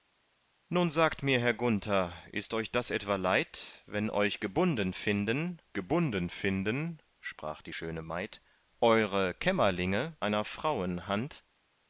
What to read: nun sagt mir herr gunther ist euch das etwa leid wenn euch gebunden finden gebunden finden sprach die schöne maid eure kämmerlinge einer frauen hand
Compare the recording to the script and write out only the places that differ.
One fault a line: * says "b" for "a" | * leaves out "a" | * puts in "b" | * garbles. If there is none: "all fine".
all fine